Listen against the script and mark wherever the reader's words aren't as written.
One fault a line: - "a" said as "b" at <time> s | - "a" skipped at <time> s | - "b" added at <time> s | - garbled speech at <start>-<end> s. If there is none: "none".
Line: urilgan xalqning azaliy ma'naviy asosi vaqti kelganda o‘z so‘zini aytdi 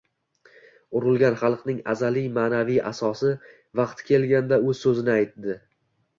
none